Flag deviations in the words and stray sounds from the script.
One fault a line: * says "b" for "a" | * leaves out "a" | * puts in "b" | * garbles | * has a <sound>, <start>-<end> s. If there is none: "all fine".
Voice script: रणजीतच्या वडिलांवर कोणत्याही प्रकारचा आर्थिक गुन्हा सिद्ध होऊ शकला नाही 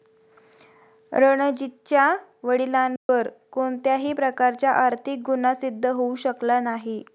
* has a dropout, 3.0-3.1 s